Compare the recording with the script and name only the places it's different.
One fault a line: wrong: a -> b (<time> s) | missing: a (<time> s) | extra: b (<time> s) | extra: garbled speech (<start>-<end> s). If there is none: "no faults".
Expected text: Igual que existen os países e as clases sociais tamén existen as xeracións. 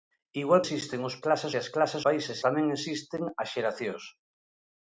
missing: que (0.6 s)
wrong: países -> clases (1.2 s)
wrong: sociais -> países (2.0 s)